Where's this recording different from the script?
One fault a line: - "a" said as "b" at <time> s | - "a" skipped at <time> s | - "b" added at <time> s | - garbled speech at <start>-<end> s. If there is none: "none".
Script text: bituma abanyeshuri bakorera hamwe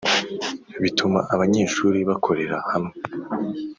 none